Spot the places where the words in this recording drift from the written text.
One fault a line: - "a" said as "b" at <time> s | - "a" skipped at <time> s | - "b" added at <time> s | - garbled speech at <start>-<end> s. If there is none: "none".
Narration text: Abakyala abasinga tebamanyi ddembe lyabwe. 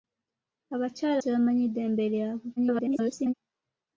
- "abasinga" skipped at 1.2 s
- garbled speech at 2.6-3.3 s